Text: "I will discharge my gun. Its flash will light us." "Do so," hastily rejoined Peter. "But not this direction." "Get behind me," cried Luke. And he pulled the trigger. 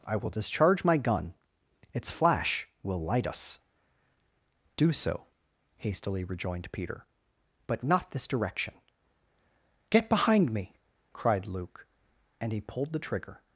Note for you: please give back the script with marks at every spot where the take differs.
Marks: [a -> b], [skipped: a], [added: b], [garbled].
"I will discharge my gun. Its flash will light us." "Do so," hastily rejoined Peter. "But not this direction." "Get behind me," cried Luke. And he pulled the trigger.